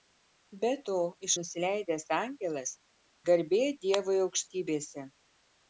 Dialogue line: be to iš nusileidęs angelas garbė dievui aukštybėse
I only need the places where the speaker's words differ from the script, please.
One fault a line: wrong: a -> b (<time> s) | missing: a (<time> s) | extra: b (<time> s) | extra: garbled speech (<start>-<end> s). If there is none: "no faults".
no faults